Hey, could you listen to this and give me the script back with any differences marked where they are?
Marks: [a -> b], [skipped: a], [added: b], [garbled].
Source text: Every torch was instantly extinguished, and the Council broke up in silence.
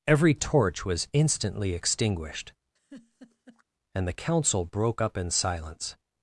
Every torch was instantly extinguished, and the Council broke up in silence.